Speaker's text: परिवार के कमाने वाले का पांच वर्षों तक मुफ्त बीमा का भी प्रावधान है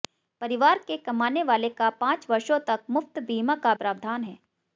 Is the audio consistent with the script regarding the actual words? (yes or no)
no